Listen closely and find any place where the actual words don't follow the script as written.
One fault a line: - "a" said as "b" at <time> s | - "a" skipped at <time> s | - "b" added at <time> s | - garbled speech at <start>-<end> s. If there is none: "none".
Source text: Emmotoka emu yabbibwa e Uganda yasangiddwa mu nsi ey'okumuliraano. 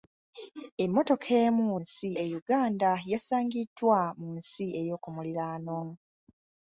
- "yabbibwa" said as "nsi" at 1.8 s